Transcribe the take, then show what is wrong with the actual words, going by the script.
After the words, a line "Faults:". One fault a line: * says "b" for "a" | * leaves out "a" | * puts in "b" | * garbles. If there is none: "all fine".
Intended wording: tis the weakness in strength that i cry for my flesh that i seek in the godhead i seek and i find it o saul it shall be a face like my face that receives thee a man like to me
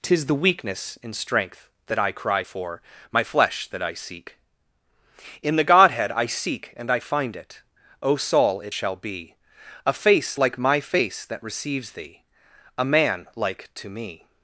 tis the weakness in strength that i cry for my flesh that i seek in the godhead i seek and i find it o saul it shall be a face like my face that receives thee a man like to me
Faults:
all fine